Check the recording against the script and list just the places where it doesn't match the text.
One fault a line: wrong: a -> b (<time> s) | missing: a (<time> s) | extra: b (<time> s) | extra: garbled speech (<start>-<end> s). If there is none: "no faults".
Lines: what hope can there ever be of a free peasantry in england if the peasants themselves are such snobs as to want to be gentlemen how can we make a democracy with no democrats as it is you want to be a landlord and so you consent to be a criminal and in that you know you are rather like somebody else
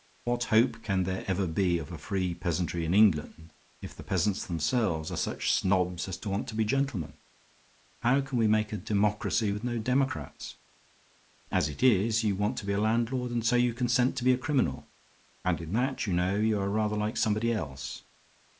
no faults